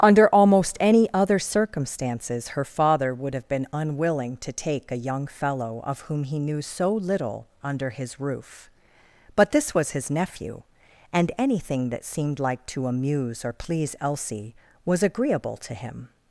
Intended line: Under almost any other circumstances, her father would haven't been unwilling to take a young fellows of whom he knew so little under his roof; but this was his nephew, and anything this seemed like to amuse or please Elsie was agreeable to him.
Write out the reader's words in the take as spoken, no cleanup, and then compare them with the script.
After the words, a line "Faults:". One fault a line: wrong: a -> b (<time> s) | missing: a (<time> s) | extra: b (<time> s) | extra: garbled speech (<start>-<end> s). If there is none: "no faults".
Under almost any other circumstances, her father would have been unwilling to take a young fellow of whom he knew so little under his roof; but this was his nephew, and anything that seemed like to amuse or please Elsie was agreeable to him.
Faults:
wrong: haven't -> have (3.4 s)
wrong: fellows -> fellow (5.3 s)
wrong: this -> that (11.9 s)